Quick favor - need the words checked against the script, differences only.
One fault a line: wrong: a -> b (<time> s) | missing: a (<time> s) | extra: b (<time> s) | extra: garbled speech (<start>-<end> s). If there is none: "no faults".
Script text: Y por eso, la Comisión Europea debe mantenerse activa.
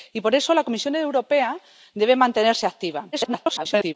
extra: garbled speech (3.1-3.9 s)